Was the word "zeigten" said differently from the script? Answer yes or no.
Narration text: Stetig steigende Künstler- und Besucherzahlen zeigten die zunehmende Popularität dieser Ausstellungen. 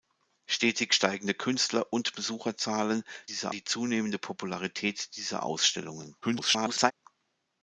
yes